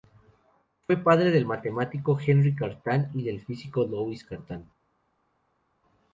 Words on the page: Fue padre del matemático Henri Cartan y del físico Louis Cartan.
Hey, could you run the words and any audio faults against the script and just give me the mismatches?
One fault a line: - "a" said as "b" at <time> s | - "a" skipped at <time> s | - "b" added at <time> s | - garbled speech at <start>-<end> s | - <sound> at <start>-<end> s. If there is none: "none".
none